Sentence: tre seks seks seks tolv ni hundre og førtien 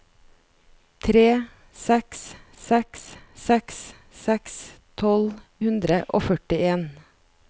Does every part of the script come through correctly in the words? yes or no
no